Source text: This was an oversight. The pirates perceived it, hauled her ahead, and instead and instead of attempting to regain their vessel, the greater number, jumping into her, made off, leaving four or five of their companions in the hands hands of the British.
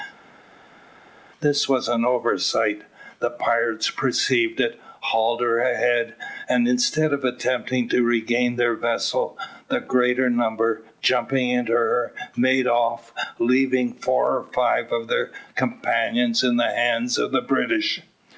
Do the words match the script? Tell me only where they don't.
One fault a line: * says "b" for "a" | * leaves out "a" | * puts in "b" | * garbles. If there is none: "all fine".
* leaves out "and instead"
* leaves out "hands"